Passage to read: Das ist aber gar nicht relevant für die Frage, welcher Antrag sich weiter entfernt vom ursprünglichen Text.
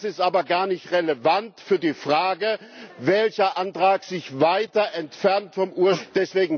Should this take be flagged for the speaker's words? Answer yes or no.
no